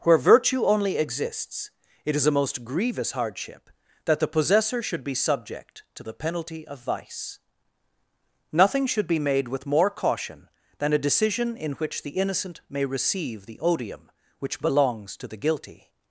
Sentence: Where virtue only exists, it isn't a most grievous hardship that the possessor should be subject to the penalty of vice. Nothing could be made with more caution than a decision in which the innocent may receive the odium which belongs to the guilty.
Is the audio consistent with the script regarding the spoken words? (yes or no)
no